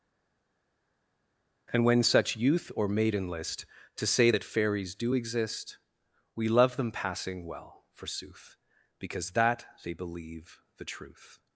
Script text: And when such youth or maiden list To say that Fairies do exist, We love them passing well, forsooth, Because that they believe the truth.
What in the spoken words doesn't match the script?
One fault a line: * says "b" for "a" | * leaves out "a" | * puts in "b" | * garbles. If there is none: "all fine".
all fine